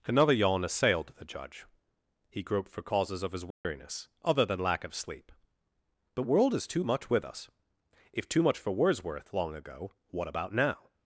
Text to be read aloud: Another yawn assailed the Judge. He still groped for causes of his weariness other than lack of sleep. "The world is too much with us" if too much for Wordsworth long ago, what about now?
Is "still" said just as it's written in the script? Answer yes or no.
no